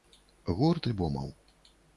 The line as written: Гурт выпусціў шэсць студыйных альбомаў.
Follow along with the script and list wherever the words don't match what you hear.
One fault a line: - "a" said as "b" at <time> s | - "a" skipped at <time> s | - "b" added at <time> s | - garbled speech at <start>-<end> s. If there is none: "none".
- "выпусціў шэсць студыйных" skipped at 0.9 s